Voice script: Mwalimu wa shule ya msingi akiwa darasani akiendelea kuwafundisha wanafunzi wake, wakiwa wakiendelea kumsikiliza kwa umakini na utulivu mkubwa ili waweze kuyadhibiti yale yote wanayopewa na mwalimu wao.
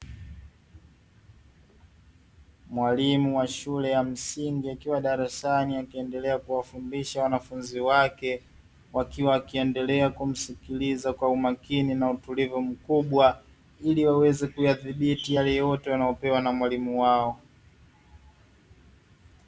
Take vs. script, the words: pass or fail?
pass